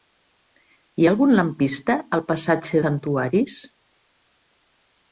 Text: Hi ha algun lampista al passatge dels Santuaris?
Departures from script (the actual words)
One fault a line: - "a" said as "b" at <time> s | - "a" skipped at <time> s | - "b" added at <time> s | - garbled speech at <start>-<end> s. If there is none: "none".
- "dels" skipped at 2.8 s